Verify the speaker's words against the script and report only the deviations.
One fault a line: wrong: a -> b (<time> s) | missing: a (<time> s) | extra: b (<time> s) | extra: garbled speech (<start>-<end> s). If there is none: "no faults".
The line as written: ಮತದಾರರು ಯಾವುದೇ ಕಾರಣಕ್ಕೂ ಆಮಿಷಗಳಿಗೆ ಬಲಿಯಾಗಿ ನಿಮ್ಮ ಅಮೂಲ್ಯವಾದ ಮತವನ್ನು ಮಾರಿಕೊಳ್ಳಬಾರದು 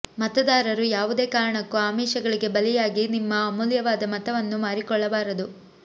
no faults